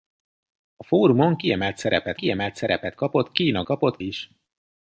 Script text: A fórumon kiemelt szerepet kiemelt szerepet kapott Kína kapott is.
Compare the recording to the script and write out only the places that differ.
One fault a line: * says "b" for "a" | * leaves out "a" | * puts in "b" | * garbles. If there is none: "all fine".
all fine